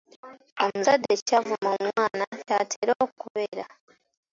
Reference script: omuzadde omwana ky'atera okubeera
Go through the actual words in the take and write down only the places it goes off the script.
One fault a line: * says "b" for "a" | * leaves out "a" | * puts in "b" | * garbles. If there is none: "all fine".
* puts in "ky'avuma"